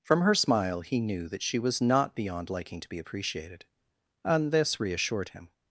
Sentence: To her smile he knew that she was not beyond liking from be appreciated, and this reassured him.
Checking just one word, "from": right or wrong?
wrong